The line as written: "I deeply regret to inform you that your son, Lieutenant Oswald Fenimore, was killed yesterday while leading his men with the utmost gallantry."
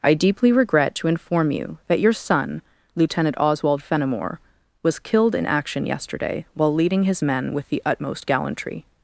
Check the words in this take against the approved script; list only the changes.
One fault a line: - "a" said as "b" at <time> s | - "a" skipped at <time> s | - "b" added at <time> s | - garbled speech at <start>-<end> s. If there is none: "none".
- "in action" added at 5.3 s